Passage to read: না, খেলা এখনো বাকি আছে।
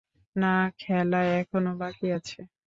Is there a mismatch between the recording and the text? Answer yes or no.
no